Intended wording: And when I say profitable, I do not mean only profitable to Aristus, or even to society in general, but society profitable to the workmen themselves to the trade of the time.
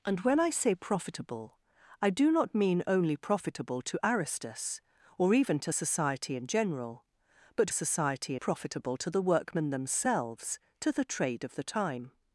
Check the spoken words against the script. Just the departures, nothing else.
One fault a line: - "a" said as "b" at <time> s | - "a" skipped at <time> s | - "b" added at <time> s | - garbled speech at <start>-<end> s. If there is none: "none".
none